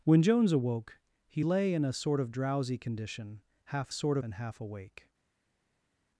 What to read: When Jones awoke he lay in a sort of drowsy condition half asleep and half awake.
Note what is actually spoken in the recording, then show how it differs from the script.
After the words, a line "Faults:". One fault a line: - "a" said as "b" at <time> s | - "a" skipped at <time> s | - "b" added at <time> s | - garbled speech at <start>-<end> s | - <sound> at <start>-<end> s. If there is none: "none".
When Jones awoke he lay in a sort of drowsy condition half sort and half awake.
Faults:
- "asleep" said as "sort" at 3.9 s